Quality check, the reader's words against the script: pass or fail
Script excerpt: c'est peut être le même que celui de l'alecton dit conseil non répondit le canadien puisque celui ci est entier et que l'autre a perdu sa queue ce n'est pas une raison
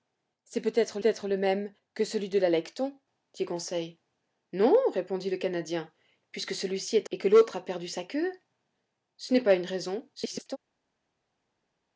fail